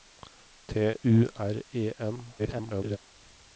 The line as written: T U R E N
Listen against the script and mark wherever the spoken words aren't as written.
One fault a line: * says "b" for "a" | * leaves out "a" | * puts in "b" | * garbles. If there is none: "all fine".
* garbles